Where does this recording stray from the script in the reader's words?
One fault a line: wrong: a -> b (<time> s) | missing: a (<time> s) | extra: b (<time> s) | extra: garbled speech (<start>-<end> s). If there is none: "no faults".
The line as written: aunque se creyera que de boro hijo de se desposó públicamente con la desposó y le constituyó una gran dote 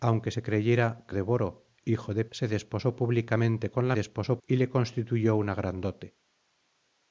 no faults